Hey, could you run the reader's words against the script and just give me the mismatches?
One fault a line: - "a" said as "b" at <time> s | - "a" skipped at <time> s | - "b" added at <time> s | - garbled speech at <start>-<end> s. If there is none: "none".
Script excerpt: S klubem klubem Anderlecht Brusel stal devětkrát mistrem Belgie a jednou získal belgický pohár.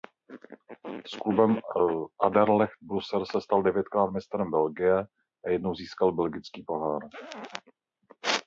- "klubem" skipped at 1.6 s
- "se" added at 3.2 s